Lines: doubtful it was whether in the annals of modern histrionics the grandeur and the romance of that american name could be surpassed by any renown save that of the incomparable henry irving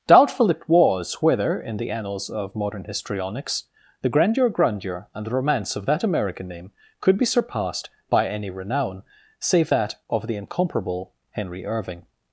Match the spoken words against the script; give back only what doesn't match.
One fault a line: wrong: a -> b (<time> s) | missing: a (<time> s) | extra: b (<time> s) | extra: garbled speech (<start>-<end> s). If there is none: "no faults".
extra: grandeur (4.5 s)